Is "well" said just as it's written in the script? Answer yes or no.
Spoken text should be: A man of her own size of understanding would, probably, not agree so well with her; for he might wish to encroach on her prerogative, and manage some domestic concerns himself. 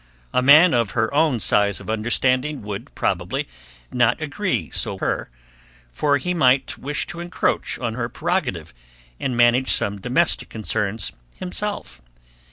no